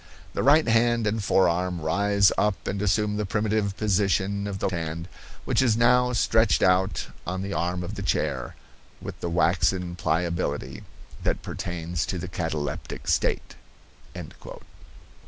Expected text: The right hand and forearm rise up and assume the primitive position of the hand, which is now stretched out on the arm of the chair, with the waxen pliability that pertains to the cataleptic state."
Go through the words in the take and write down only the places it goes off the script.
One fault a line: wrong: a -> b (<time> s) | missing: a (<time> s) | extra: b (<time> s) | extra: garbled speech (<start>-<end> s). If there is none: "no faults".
no faults